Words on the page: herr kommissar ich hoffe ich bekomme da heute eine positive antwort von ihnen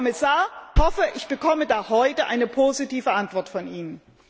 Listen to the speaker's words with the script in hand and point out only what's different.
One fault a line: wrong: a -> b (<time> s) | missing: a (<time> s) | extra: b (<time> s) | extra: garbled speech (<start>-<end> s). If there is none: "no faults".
missing: ich (0.5 s)